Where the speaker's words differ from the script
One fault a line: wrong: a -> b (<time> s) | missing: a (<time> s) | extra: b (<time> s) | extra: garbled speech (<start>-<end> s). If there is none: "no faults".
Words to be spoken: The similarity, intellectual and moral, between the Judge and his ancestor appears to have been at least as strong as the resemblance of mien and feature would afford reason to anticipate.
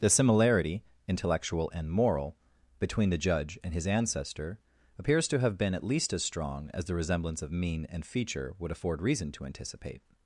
no faults